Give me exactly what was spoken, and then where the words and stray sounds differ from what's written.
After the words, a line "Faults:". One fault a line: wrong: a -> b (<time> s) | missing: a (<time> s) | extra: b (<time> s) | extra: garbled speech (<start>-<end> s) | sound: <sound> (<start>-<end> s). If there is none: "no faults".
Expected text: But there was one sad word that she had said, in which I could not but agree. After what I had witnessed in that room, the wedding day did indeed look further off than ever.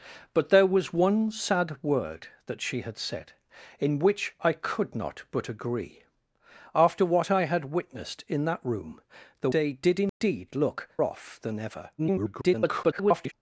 But there was one sad word that she had said, in which I could not but agree. After what I had witnessed in that room, the day did indeed look off than ever. [garbled]
Faults:
missing: wedding (9.5 s)
sound: dropout (10.1-10.2 s)
missing: further (10.9 s)
extra: garbled speech (12.0-13.3 s)